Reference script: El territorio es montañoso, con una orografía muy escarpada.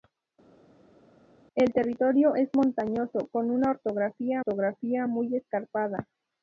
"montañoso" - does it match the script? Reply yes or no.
yes